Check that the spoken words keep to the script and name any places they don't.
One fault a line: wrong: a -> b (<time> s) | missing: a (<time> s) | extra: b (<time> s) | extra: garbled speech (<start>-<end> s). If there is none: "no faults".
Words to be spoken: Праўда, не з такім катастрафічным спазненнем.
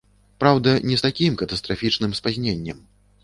no faults